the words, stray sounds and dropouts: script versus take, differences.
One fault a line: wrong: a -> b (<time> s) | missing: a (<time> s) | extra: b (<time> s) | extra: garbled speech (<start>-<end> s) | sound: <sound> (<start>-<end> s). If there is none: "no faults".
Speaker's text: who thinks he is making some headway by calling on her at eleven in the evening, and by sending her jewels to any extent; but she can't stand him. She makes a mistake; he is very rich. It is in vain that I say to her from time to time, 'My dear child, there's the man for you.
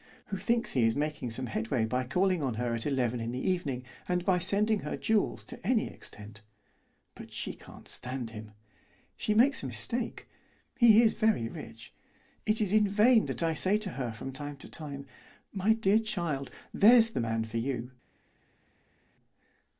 no faults